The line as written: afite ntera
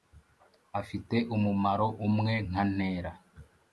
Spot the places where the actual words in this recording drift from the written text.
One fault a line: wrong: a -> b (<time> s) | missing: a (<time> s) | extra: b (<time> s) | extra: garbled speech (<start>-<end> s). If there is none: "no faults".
extra: umumaro umwe nka (1.4 s)